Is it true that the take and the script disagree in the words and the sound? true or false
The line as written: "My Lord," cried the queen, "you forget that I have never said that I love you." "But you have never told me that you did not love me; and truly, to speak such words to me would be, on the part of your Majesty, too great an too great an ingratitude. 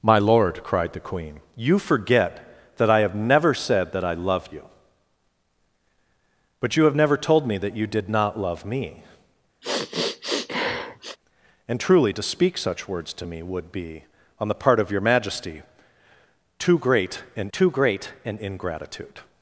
true